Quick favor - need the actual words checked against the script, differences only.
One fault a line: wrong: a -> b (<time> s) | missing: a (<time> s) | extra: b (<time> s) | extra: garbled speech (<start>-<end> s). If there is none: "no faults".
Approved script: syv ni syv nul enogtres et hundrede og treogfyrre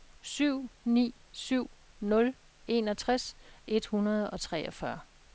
no faults